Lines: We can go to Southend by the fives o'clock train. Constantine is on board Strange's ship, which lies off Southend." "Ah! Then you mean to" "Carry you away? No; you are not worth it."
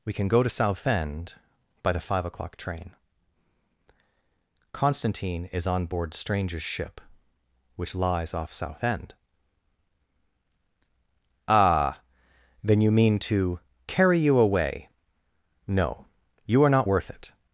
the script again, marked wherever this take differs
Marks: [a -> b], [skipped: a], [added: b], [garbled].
We can go to Southend by the [fives -> five] o'clock train. Constantine is on board Strange's ship, which lies off Southend." "Ah! Then you mean to" "Carry you away? No; you are not worth it."